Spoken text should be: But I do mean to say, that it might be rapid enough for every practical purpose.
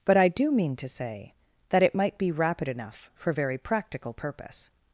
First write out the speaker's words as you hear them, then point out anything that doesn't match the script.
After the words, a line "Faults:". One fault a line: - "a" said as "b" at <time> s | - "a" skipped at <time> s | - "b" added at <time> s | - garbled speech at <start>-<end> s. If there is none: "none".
But I do mean to say, that it might be rapid enough for very practical purpose.
Faults:
- "every" said as "very" at 3.3 s